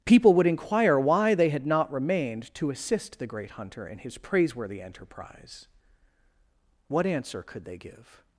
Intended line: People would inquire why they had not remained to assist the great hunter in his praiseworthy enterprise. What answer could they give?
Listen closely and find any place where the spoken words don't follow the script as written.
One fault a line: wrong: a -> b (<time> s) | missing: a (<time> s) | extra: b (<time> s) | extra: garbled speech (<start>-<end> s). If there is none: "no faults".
no faults